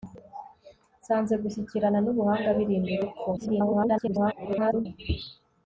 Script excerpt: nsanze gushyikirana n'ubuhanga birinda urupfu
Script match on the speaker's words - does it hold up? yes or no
no